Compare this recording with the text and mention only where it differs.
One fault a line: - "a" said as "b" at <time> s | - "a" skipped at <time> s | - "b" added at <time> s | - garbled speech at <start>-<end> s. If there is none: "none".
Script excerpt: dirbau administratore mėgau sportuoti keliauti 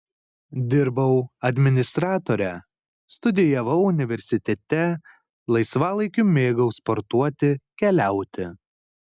- "studijavau universitete laisvalaikiu" added at 3.2 s